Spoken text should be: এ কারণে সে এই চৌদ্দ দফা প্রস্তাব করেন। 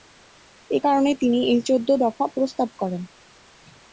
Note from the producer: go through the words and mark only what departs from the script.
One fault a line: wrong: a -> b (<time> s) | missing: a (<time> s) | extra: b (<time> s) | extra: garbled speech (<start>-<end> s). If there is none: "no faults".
wrong: সে -> তিনি (1.2 s)